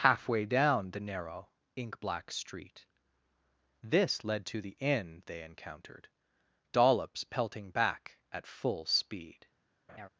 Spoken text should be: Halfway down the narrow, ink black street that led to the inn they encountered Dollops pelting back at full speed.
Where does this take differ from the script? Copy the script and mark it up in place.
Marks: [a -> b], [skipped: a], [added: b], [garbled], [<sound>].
Halfway down the narrow, ink black street [that -> this] led to the inn they encountered Dollops pelting back at full speed. [laugh]